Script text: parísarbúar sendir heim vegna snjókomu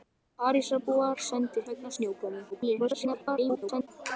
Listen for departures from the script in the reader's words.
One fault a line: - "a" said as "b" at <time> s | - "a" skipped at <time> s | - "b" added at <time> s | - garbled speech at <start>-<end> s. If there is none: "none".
- "heim" skipped at 1.7 s
- garbled speech at 2.5-3.9 s